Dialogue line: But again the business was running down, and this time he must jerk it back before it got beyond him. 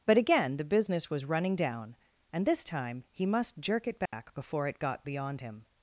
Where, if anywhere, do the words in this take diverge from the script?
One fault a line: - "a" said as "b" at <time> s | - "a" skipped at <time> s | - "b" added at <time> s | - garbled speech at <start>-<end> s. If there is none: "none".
none